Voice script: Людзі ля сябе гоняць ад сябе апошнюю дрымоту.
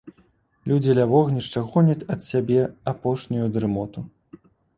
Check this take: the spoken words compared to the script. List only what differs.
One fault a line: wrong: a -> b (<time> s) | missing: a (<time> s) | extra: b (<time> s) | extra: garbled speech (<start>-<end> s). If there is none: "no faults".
wrong: сябе -> вогнішча (1.1 s)